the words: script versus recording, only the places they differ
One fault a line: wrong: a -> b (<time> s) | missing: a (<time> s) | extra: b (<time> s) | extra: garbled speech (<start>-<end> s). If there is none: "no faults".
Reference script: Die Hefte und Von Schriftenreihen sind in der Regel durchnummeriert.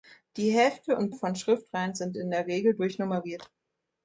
no faults